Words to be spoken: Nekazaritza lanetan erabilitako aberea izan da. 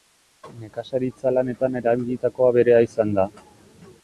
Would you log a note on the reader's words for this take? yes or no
no